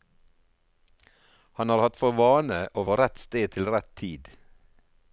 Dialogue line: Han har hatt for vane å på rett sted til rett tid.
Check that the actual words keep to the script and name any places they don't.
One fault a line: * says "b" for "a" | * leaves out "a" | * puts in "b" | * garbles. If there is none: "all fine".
all fine